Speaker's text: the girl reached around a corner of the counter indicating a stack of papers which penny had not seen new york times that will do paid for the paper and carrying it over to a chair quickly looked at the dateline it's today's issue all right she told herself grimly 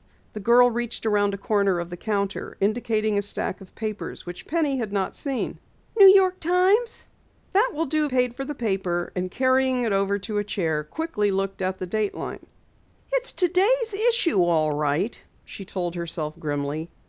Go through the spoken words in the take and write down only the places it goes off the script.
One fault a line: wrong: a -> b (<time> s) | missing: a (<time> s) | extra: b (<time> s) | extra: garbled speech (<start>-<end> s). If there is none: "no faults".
no faults